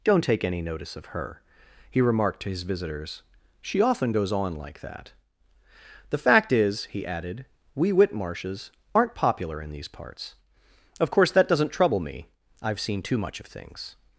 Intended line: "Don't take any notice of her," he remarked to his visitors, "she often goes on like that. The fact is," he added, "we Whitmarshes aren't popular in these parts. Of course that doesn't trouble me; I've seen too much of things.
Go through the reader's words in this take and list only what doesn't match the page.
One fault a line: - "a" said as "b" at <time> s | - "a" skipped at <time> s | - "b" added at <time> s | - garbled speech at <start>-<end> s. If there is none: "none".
none